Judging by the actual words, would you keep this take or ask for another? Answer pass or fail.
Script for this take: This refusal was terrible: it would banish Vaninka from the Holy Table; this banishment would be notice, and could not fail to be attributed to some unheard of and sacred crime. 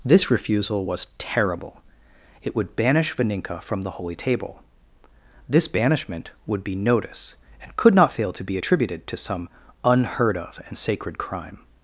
pass